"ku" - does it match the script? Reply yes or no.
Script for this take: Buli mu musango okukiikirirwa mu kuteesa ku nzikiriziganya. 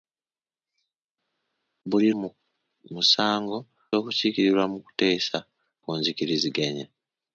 yes